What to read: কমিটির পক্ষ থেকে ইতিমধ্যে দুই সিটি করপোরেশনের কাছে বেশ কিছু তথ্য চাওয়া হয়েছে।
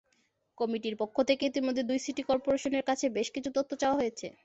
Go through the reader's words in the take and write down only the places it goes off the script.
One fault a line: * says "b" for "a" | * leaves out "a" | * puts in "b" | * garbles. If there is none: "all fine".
all fine